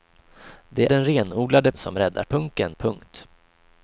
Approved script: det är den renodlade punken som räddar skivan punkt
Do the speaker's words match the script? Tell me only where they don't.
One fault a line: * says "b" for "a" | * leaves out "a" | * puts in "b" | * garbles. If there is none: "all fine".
* leaves out "är"
* leaves out "punken"
* says "punken" for "skivan"